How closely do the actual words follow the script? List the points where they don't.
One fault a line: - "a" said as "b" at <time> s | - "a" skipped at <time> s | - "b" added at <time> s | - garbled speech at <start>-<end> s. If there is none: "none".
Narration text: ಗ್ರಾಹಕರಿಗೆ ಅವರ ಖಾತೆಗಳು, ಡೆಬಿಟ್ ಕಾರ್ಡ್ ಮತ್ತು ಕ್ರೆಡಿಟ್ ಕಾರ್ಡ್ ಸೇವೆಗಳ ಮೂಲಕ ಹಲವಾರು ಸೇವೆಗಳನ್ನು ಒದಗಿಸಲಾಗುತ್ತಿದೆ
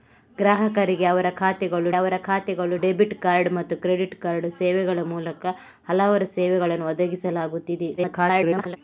- "ಅವರ ಖಾತೆಗಳು" added at 1.9 s
- garbled speech at 8.0-8.8 s